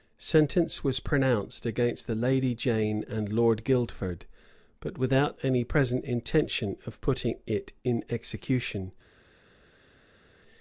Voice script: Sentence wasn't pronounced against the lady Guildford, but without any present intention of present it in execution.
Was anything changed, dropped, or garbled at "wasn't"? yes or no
yes